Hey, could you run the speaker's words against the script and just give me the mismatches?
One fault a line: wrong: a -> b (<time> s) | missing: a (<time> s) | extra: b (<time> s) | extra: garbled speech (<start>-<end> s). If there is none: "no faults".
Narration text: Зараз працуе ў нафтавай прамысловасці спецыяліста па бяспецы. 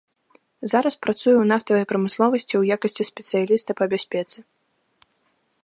extra: ў якасці (2.6 s)